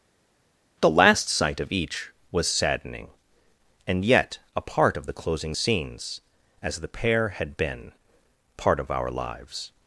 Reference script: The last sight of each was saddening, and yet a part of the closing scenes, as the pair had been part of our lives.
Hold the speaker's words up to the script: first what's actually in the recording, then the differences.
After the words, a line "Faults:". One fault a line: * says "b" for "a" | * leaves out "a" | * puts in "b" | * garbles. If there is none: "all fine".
The last sight of each was saddening, and yet a part of the closing scenes, as the pair had been part of our lives.
Faults:
all fine